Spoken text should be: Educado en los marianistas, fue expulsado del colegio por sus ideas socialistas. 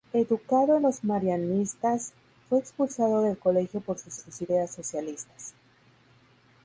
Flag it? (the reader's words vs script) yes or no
yes